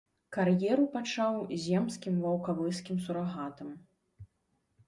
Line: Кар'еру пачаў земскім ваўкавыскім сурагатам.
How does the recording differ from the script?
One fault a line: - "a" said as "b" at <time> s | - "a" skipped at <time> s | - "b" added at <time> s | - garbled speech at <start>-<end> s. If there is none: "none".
none